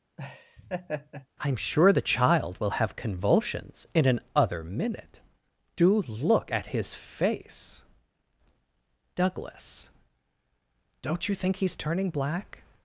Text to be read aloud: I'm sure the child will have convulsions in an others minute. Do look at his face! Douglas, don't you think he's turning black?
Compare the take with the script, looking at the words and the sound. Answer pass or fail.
fail